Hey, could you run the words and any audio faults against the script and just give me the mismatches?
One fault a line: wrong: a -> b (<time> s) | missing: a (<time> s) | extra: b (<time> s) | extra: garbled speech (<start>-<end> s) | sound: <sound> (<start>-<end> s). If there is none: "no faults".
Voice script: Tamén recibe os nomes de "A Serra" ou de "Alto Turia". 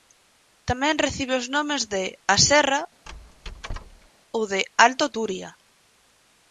sound: squeak (3.1-4.1 s)